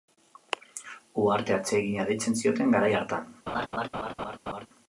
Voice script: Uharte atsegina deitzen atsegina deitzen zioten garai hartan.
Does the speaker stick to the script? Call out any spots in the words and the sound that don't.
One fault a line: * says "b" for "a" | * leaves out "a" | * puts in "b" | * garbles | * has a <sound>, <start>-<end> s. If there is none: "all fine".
* leaves out "atsegina deitzen"
* has a laugh, 3.5-4.7 s